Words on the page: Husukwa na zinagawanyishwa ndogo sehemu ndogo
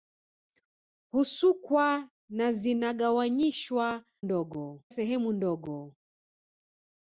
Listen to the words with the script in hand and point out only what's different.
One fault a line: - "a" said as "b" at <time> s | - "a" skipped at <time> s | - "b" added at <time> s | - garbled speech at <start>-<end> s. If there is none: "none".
none